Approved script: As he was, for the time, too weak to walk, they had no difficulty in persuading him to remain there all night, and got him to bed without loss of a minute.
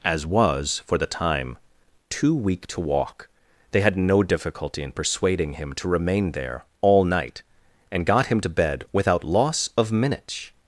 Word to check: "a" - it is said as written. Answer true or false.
false